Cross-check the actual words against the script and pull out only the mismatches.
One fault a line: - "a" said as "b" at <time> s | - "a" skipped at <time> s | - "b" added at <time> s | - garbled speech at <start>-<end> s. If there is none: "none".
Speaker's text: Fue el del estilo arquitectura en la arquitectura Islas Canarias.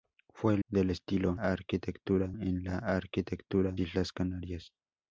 none